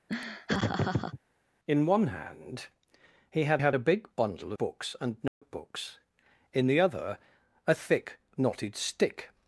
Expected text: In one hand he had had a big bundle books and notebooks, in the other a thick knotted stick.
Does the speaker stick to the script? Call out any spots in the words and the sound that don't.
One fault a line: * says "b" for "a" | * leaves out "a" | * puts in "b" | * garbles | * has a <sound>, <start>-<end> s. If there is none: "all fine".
* has a laugh, 0.1-1.2 s
* has a dropout, 5.3-5.4 s